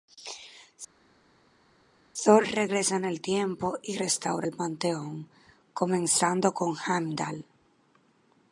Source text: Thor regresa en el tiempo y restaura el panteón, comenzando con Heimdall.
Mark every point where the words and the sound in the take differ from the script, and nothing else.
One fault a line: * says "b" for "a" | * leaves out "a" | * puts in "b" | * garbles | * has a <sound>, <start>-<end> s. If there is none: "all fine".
all fine